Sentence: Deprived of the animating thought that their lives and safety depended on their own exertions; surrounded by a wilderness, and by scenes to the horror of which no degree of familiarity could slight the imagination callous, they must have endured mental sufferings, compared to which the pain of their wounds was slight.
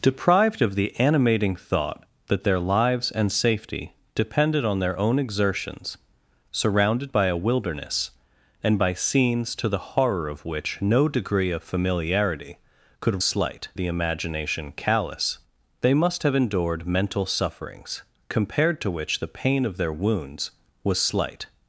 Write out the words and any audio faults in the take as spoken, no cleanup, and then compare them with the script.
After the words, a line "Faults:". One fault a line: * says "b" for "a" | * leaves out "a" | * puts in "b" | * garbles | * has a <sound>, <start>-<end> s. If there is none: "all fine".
Deprived of the animating thought that their lives and safety depended on their own exertions; surrounded by a wilderness, and by scenes to the horror of which no degree of familiarity could slight the imagination callous, they must have endured mental sufferings, compared to which the pain of their wounds was slight.
Faults:
all fine